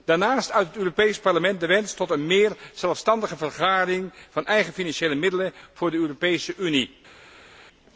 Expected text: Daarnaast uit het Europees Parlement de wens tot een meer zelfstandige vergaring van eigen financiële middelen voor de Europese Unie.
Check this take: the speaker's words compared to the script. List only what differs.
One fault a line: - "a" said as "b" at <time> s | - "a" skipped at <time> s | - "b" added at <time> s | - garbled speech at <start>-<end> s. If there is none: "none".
none